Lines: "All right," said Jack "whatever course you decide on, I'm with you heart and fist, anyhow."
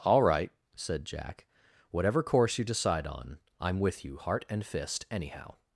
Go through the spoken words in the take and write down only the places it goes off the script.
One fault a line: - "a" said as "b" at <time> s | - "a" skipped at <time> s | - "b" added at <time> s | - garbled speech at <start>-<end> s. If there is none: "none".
none